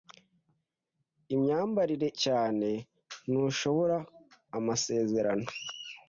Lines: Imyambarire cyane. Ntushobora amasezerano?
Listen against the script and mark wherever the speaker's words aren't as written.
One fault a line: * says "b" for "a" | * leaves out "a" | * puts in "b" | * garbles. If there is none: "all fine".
all fine